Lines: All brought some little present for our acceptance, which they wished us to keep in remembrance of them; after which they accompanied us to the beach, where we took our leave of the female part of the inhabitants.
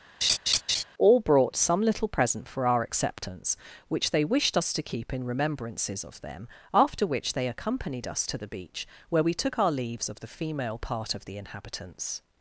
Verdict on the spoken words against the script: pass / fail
fail